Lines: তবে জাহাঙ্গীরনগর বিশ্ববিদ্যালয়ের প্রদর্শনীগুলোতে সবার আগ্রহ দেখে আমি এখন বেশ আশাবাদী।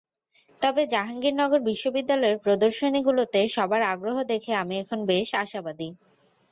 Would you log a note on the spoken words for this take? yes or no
no